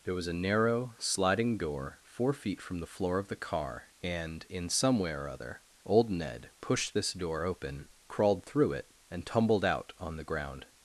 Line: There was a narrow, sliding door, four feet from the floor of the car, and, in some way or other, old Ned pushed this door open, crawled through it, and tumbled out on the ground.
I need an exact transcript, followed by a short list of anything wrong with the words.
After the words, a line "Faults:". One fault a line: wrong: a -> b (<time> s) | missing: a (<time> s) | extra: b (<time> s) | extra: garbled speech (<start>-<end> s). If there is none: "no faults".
There was a narrow, sliding door, four feet from the floor of the car, and, in some way or other, old Ned pushed this door open, crawled through it, and tumbled out on the ground.
Faults:
no faults